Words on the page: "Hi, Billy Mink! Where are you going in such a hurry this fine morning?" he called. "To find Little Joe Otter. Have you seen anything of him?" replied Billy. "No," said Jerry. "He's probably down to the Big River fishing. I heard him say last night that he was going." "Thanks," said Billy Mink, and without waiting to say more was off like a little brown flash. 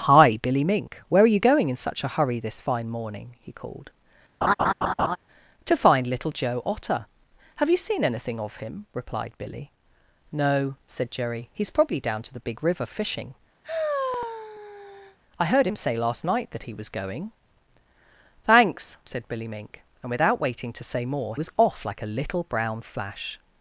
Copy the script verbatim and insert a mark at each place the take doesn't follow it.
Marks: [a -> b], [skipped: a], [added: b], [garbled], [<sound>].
"Hi, Billy Mink! Where are you going in such a hurry this fine morning?" he called. [laugh] "To find Little Joe Otter. Have you seen anything of him?" replied Billy. "No," said Jerry. "He's probably down to the Big River fishing. [sigh] I heard him say last night that he was going." "Thanks," said Billy Mink, and without waiting to say more was off like a little brown flash.